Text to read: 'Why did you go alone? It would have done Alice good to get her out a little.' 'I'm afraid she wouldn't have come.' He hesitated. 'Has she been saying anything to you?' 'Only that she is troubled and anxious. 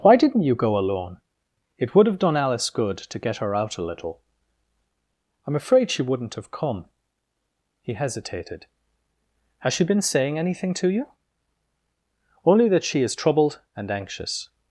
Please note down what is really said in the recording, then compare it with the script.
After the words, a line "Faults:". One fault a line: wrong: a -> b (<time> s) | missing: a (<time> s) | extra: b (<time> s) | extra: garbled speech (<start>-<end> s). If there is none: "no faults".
'Why didn't you go alone? It would have done Alice good to get her out a little.' 'I'm afraid she wouldn't have come.' He hesitated. 'Has she been saying anything to you?' 'Only that she is troubled and anxious.
Faults:
wrong: did -> didn't (0.1 s)